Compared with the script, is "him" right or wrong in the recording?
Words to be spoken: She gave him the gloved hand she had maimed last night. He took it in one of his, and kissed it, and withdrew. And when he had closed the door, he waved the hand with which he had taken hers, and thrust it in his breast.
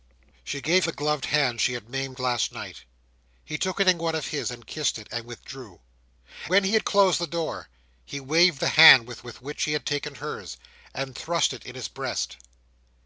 wrong